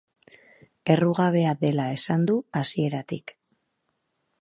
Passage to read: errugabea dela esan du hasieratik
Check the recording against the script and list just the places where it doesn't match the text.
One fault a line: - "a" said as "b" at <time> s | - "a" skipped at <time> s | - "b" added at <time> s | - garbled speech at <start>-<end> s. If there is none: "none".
none